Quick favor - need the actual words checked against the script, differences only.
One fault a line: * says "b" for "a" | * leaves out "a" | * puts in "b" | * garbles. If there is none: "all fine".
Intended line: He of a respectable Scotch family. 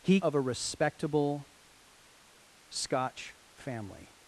all fine